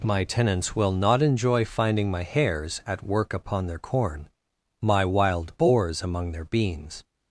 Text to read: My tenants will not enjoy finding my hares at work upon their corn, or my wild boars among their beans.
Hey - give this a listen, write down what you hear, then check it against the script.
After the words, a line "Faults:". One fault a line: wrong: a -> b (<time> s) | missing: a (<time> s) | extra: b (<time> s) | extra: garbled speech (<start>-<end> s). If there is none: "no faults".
My tenants will not enjoy finding my hares at work upon their corn, my wild boars among their beans.
Faults:
missing: or (4.3 s)